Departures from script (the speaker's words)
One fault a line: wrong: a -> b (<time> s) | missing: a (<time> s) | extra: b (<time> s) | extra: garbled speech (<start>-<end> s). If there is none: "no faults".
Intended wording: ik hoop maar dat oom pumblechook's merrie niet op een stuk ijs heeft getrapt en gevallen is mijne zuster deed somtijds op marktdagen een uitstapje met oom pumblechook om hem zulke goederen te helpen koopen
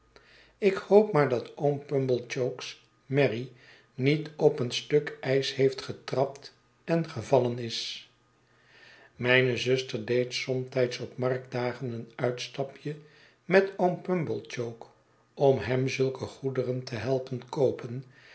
no faults